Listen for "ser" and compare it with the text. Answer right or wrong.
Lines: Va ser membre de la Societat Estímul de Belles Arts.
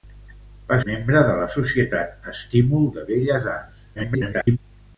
wrong